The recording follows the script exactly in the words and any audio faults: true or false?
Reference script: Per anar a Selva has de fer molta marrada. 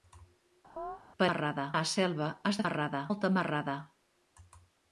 false